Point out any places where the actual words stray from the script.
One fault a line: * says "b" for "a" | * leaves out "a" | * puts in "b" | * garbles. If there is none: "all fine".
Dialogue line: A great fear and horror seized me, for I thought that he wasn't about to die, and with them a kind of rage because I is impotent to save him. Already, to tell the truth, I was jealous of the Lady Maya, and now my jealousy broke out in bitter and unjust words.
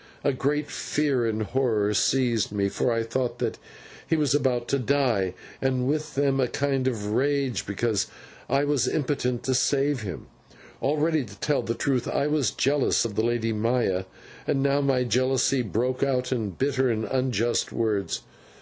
* says "was" for "wasn't"
* says "was" for "is"